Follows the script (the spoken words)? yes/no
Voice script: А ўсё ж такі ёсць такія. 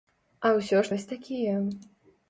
no